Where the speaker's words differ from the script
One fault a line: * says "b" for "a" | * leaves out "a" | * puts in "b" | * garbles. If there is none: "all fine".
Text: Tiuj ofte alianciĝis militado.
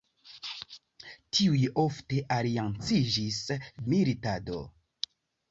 all fine